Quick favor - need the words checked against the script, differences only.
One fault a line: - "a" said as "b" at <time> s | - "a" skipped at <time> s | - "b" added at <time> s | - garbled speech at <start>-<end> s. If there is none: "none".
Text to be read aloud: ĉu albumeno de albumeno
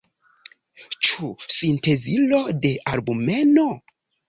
- "albumeno" said as "sintezilo" at 1.6 s